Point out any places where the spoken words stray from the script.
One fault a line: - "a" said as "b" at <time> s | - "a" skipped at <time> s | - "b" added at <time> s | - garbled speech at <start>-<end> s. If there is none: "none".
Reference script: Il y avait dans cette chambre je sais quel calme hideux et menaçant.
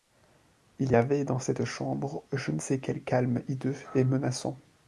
- "ne" added at 2.5 s